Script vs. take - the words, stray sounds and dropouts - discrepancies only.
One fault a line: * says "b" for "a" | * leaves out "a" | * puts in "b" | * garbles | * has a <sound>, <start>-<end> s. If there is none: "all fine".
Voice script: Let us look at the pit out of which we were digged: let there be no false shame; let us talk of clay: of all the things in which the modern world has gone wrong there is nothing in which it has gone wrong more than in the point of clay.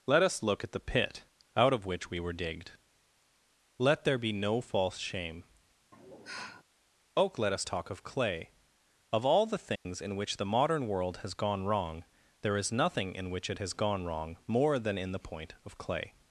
* has a sigh, 5.9-6.6 s
* puts in "oak"
* has a dropout, 9.8-9.9 s